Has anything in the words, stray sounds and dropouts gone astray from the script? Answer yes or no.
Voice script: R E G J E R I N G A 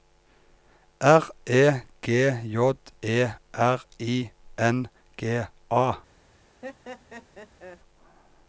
yes